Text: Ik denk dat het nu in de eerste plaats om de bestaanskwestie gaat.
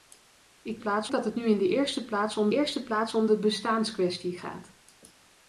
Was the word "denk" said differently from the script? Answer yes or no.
yes